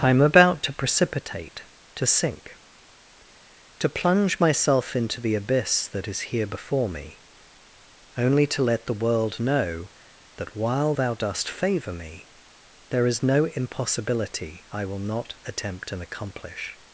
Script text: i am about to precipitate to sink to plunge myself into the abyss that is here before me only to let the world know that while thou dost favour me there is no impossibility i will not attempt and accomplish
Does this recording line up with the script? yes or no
yes